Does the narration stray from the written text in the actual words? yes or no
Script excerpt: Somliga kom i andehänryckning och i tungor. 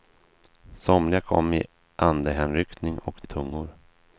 no